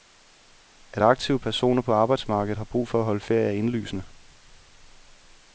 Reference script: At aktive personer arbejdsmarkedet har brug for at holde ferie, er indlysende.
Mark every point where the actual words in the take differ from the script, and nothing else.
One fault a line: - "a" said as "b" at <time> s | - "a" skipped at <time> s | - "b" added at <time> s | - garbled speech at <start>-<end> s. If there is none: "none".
- "på" added at 1.8 s